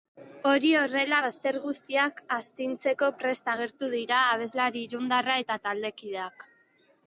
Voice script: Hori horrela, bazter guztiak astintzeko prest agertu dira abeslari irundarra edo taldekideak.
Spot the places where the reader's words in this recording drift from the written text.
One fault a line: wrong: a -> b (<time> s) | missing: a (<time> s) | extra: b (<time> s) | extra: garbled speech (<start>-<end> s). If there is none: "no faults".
wrong: edo -> eta (5.5 s)